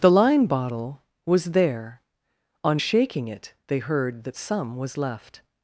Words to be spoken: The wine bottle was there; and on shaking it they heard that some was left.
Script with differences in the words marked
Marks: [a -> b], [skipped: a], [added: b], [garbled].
The [wine -> line] bottle was there; [skipped: and] on shaking it they heard that some was left.